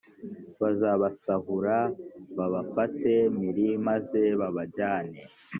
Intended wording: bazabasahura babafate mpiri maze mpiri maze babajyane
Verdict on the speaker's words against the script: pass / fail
fail